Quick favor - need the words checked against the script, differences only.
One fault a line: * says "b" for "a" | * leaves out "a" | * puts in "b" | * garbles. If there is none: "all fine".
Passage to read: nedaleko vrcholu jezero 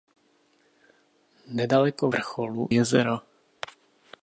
all fine